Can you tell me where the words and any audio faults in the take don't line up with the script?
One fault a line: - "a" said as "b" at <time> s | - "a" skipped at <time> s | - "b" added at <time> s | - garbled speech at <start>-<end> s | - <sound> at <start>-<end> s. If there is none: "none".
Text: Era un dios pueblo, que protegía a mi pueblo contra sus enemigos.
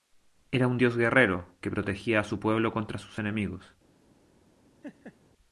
- "pueblo" said as "guerrero" at 1.0 s
- "mi" said as "su" at 2.2 s
- laugh at 4.8-5.2 s